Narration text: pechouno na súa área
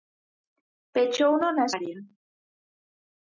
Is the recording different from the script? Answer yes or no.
yes